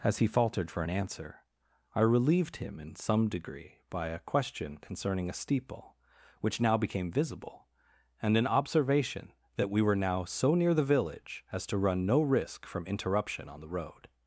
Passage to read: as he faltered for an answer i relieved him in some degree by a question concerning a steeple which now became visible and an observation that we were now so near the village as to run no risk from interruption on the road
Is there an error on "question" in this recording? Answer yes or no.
no